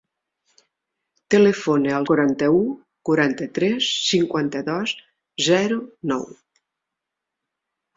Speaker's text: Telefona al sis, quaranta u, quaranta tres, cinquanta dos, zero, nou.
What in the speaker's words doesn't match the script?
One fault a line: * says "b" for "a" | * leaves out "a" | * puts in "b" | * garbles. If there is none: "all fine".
* leaves out "sis"